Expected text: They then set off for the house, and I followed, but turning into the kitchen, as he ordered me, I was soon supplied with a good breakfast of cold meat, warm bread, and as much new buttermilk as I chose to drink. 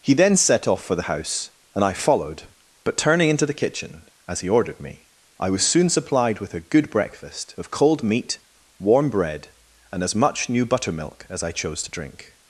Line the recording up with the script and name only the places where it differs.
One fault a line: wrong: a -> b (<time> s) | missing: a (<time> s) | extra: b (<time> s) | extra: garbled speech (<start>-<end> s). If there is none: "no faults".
wrong: They -> He (0.0 s)